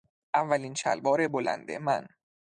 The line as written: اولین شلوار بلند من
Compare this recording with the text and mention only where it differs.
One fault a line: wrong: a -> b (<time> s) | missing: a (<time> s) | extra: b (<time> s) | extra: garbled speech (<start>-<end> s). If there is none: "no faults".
no faults